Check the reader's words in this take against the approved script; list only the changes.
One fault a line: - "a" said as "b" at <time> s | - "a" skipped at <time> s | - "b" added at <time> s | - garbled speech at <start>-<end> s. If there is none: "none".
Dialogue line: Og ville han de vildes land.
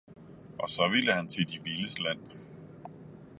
- "så" added at 0.7 s
- "til" added at 1.3 s